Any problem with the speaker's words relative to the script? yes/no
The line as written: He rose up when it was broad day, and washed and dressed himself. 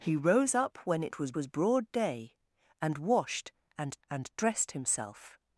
yes